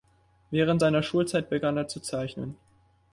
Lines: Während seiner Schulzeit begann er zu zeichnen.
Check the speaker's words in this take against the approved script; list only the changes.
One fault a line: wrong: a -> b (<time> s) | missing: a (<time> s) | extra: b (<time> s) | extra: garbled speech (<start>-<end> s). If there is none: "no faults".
no faults